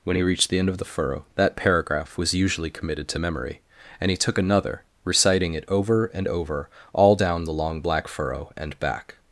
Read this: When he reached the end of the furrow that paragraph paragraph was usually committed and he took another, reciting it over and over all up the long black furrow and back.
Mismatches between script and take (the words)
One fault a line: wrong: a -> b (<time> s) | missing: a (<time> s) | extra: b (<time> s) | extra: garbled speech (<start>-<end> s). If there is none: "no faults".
missing: paragraph (2.2 s)
extra: to memory (3.1 s)
wrong: up -> down (7.2 s)